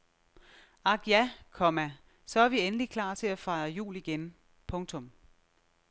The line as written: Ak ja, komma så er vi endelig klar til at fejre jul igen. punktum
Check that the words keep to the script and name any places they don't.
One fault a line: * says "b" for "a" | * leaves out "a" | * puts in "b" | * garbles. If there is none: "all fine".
all fine